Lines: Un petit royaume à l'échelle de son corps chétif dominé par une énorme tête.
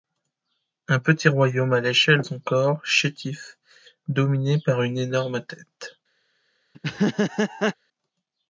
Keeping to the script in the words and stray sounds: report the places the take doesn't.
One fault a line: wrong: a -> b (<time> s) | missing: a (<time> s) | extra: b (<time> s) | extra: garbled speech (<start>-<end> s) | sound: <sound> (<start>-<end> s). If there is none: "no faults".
missing: de (2.2 s)
sound: laugh (6.7-7.7 s)